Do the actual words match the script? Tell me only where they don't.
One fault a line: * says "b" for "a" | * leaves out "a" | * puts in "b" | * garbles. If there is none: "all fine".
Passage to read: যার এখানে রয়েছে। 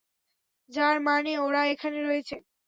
* puts in "মানে ওরা"